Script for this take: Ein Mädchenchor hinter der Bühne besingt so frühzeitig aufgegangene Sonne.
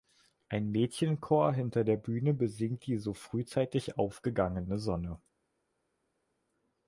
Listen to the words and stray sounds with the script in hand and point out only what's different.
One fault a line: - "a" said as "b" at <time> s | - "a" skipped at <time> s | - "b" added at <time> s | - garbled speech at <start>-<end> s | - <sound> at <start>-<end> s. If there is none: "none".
- "die" added at 2.9 s